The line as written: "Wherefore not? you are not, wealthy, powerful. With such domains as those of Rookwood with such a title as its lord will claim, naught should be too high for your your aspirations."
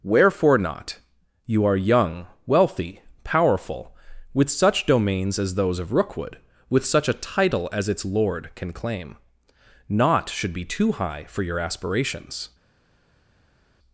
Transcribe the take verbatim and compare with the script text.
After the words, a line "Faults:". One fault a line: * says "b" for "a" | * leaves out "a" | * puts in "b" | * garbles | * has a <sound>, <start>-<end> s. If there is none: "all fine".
"Wherefore not? you are young, wealthy, powerful. With such domains as those of Rookwood with such a title as its lord can claim, naught should be too high for your aspirations."
Faults:
* says "young" for "not"
* says "can" for "will"
* leaves out "your"